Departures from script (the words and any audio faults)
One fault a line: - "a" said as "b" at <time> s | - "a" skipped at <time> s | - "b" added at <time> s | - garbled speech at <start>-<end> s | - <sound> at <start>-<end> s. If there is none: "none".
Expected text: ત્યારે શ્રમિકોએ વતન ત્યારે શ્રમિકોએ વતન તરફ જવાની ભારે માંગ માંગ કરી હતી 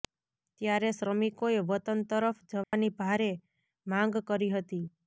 - "ત્યારે શ્રમિકોએ વતન" skipped at 2.0 s
- dropout at 2.6-2.7 s
- "માંગ" skipped at 4.2 s